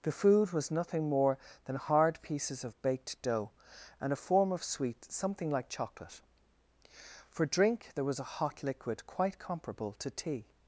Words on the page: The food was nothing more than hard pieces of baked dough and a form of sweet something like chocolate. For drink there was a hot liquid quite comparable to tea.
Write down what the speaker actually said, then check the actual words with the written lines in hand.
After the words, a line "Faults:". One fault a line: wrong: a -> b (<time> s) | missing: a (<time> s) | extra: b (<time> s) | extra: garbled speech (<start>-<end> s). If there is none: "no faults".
The food was nothing more than hard pieces of baked dough and a form of sweet something like chocolate. For drink there was a hot liquid quite comparable to tea.
Faults:
no faults